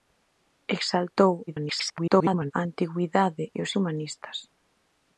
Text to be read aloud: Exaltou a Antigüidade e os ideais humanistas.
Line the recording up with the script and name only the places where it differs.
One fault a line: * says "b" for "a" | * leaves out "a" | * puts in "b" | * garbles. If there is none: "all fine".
* garbles
* leaves out "ideais"